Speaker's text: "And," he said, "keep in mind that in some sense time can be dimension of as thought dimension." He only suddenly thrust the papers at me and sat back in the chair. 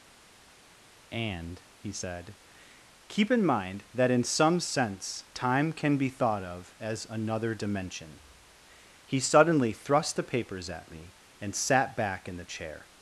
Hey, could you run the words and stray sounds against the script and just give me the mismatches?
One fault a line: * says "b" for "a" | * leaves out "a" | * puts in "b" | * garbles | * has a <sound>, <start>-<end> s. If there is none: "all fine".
* says "thought" for "dimension"
* says "another" for "thought"
* leaves out "only"